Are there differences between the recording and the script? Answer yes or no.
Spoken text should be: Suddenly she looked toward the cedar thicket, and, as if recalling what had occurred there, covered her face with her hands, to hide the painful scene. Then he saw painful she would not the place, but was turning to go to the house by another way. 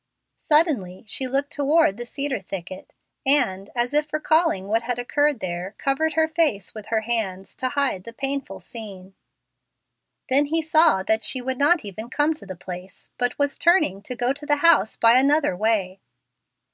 yes